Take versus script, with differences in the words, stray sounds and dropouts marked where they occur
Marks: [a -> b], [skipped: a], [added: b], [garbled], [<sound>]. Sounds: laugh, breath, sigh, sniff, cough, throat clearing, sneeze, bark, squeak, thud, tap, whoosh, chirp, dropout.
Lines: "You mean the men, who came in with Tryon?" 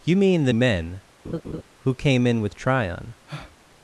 "You mean the men, [laugh] who came in with Tryon?" [breath]